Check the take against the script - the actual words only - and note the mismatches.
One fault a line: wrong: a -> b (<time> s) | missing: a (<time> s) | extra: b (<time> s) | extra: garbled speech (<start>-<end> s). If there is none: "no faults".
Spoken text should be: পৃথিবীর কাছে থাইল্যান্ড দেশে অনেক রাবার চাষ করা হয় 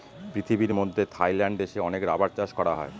wrong: কাছে -> মধ্যে (0.7 s)